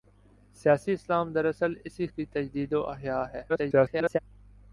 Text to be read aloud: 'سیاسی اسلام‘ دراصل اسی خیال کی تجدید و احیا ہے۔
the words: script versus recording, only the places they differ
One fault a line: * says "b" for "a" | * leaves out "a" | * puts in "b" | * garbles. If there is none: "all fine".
* leaves out "خیال"
* garbles